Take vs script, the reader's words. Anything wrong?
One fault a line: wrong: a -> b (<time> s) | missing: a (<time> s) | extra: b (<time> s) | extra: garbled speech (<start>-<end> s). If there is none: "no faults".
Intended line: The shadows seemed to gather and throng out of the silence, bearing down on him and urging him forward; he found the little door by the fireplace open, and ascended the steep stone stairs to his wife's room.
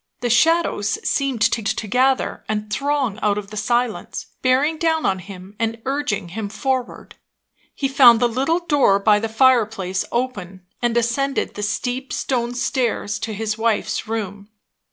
extra: to (1.7 s)